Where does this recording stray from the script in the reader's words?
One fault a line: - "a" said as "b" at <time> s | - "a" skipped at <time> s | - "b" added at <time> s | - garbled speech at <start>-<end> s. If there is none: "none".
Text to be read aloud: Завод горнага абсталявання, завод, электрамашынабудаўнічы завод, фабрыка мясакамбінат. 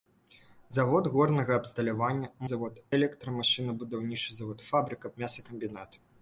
none